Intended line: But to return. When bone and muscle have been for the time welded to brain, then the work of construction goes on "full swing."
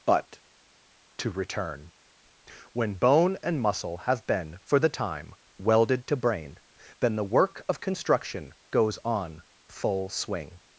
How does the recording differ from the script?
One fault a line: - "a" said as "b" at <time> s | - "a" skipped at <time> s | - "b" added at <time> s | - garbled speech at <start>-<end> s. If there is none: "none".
none